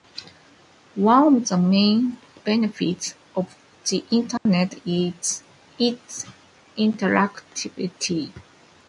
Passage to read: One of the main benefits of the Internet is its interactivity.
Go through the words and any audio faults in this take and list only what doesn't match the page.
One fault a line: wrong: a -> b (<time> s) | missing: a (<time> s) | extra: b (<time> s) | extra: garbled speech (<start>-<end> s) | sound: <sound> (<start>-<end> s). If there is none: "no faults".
sound: dropout (4.4-4.5 s)